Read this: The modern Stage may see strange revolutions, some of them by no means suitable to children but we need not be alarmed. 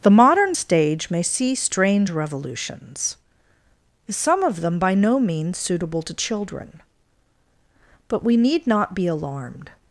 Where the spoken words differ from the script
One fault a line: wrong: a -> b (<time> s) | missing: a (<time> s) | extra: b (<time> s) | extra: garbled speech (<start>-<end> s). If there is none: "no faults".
no faults